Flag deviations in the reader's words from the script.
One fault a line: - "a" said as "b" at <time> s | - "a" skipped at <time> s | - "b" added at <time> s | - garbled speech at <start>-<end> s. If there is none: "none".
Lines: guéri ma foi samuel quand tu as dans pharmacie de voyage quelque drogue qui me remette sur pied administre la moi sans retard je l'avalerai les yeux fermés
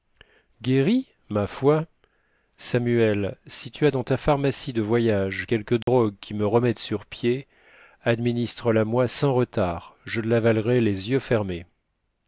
- "quand" said as "si" at 3.5 s
- "ta" added at 4.0 s